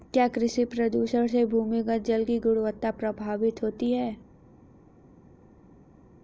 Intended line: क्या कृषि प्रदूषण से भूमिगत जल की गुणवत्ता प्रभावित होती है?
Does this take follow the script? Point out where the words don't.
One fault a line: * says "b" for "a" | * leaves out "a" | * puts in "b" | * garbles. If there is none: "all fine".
all fine